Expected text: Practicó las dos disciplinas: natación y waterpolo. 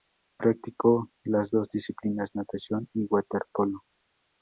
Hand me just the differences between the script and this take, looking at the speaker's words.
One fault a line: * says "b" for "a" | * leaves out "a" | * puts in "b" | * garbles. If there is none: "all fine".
all fine